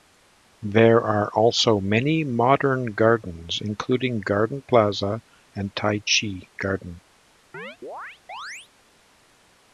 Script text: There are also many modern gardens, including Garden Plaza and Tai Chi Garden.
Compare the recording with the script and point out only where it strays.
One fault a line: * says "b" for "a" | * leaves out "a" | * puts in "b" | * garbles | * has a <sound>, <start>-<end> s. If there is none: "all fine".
* has a chirp, 7.5-8.7 s